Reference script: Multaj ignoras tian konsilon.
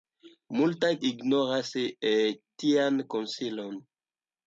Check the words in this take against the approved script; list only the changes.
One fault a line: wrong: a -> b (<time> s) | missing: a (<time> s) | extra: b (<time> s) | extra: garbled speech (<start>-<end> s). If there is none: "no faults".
no faults